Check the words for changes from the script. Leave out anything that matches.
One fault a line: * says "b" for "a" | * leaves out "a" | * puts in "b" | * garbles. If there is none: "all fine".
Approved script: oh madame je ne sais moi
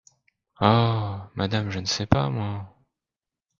* puts in "pas"